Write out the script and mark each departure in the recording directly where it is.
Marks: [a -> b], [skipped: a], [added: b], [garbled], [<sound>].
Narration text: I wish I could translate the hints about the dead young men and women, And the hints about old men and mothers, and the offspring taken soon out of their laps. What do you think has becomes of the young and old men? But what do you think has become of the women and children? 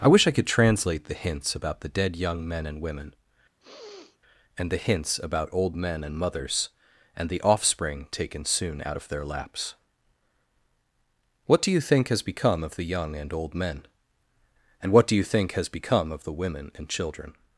I wish I could translate the hints about the dead young men and women, [sneeze] And the hints about old men and mothers, and the offspring taken soon out of their laps. What do you think has [becomes -> become] of the young and old men? [But -> And] what do you think has become of the women and children?